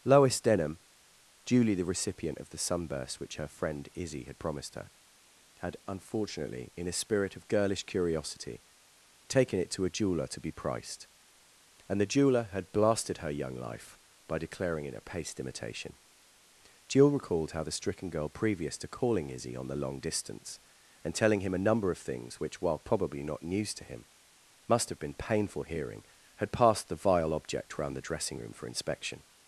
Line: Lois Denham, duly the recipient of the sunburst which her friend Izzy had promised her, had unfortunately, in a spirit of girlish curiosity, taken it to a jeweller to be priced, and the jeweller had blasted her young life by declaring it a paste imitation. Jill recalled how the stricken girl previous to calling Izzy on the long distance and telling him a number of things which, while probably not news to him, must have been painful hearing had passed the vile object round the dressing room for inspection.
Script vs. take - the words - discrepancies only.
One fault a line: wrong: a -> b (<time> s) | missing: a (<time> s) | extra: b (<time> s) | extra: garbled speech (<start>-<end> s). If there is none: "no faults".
no faults